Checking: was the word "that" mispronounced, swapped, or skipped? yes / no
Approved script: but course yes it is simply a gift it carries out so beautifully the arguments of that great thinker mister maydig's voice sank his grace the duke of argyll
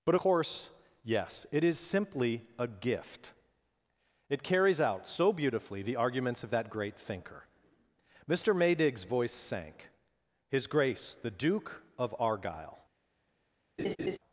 no